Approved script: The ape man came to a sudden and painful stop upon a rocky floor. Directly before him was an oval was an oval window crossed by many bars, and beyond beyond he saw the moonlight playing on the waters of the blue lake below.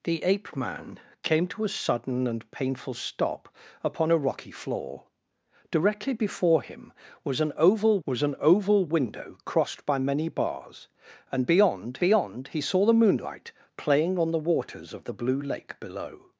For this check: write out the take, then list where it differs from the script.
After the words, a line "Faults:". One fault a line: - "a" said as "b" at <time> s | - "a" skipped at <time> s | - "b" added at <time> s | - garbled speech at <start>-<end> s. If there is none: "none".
The ape man came to a sudden and painful stop upon a rocky floor. Directly before him was an oval was an oval window crossed by many bars, and beyond beyond he saw the moonlight playing on the waters of the blue lake below.
Faults:
none